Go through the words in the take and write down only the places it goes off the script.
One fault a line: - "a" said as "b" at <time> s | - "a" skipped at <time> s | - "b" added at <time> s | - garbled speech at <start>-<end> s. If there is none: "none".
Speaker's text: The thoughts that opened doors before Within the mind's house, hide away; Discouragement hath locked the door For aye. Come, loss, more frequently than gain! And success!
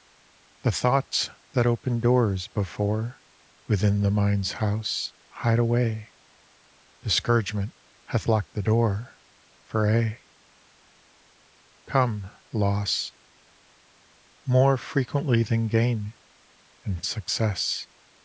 none